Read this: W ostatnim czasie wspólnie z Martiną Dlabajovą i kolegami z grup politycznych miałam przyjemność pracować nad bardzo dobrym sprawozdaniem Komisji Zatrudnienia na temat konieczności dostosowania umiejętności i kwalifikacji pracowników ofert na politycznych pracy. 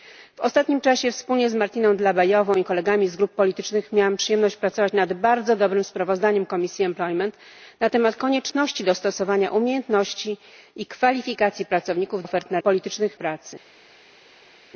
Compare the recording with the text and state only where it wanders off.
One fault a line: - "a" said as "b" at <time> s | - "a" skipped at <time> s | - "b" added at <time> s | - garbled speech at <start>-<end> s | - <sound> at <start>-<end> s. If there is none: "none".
none